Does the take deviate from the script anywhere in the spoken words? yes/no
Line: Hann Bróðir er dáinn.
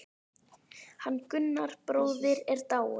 yes